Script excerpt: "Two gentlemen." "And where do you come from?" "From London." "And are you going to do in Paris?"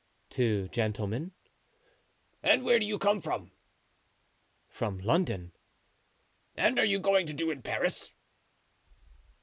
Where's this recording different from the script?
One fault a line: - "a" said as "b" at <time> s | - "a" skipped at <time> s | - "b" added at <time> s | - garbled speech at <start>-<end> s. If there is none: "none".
none